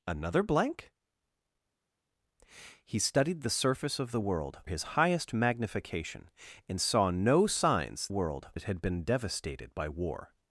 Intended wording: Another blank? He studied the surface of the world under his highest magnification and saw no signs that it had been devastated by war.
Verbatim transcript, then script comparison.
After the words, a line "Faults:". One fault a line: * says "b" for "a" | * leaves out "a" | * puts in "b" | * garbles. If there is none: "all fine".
Another blank? He studied the surface of the world his highest magnification and saw no signs world it had been devastated by war.
Faults:
* leaves out "under"
* says "world" for "that"